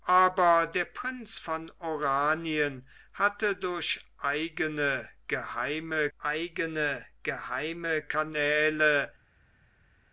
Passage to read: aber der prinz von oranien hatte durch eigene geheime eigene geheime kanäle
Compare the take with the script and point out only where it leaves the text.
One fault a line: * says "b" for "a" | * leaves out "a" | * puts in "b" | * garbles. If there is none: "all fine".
all fine